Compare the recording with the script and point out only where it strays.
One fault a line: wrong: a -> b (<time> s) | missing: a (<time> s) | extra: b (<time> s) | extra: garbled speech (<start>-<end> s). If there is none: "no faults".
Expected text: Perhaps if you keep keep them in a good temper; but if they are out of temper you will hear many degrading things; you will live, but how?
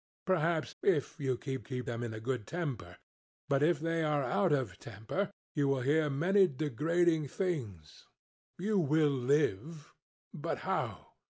no faults